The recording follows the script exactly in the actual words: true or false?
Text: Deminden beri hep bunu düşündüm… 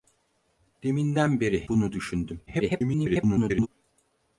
false